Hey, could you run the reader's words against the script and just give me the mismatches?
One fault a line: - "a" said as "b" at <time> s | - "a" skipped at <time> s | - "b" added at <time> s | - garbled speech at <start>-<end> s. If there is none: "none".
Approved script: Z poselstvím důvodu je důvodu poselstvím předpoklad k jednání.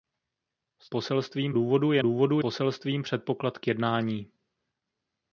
none